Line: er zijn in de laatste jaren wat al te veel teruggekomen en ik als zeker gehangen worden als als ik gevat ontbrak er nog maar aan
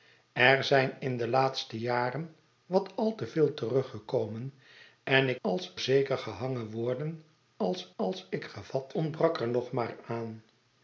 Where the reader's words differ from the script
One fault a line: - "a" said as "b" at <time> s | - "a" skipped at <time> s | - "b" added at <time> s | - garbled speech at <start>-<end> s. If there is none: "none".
none